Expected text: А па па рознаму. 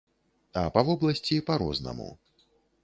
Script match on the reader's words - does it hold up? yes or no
no